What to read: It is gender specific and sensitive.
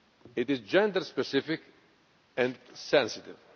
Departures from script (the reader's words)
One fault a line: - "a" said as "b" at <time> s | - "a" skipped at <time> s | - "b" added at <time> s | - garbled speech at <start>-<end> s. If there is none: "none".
none